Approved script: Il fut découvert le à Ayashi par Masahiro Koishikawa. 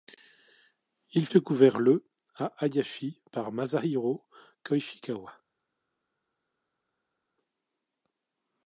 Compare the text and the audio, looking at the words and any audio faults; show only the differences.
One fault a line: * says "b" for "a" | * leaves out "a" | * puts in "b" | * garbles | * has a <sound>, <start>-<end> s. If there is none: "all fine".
* leaves out "fut"